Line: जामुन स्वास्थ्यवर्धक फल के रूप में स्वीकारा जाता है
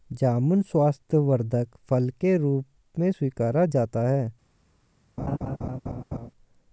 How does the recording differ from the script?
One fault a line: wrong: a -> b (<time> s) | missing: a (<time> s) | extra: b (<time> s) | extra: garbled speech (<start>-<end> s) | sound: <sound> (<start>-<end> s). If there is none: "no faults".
sound: laugh (5.2-6.3 s)